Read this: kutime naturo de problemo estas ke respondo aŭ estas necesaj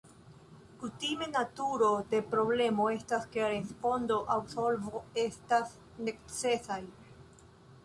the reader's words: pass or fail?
fail